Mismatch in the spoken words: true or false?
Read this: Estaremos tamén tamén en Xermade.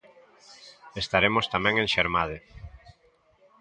true